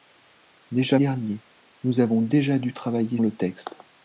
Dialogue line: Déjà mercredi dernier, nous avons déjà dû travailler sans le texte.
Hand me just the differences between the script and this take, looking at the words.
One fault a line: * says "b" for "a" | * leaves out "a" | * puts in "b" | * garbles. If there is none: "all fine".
* leaves out "mercredi"
* leaves out "sans"